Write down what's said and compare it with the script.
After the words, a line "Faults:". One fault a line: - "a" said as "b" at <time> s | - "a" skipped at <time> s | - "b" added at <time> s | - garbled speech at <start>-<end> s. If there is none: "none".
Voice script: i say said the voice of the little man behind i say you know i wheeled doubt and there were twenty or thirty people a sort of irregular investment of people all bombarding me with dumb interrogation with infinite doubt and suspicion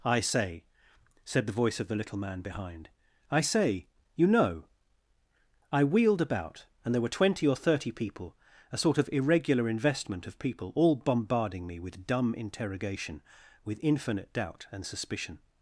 i say said the voice of the little man behind i say you know i wheeled about and there were twenty or thirty people a sort of irregular investment of people all bombarding me with dumb interrogation with infinite doubt and suspicion
Faults:
- "doubt" said as "about" at 6.2 s